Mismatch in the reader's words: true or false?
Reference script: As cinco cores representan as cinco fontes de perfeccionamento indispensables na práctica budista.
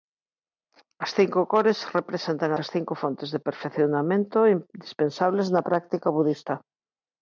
false